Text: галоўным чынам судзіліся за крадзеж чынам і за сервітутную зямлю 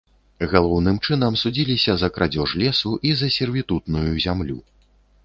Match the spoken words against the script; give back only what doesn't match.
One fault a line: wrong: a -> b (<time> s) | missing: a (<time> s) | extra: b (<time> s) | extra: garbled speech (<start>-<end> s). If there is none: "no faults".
wrong: чынам -> лесу (2.6 s)